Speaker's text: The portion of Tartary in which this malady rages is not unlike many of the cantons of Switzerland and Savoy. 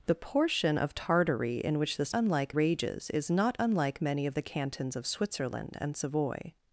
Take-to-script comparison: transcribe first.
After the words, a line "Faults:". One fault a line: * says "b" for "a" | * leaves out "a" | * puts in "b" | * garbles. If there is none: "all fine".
The portion of Tartary in which this unlike rages is not unlike many of the cantons of Switzerland and Savoy.
Faults:
* says "unlike" for "malady"